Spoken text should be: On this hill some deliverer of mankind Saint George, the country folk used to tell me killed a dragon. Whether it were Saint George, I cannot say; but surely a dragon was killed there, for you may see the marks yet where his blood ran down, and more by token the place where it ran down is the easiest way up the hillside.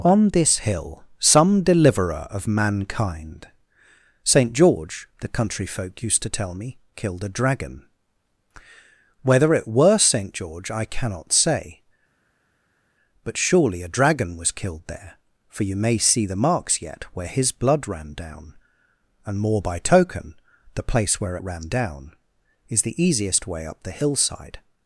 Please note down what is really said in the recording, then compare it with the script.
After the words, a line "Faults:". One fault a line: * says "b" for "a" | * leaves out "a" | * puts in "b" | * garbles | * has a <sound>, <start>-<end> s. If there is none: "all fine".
On this hill some deliverer of mankind Saint George, the country folk used to tell me killed a dragon. Whether it were Saint George, I cannot say; but surely a dragon was killed there, for you may see the marks yet where his blood ran down, and more by token the place where it ran down is the easiest way up the hillside.
Faults:
all fine